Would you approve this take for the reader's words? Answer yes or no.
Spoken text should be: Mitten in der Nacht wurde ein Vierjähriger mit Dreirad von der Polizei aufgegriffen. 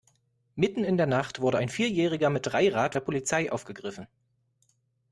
no